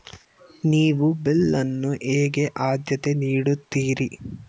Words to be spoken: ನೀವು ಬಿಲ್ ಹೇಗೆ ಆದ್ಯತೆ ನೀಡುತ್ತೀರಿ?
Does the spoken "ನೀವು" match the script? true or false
true